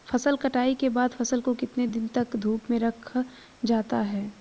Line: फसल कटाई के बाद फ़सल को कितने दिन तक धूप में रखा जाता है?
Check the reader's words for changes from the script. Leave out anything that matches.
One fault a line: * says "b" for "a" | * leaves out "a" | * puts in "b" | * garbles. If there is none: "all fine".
all fine